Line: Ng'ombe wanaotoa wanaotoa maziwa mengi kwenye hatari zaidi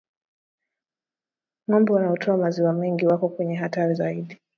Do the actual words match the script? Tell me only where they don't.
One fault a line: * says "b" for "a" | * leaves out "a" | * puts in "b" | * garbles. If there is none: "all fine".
* leaves out "wanaotoa"
* puts in "wako"